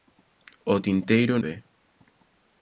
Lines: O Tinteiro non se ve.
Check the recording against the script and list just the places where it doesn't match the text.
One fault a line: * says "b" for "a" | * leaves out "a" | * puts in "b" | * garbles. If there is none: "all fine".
* leaves out "non se"